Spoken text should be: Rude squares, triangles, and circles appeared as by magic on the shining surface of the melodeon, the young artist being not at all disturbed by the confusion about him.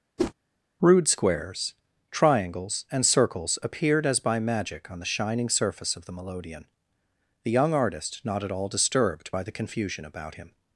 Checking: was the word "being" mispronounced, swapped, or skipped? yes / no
yes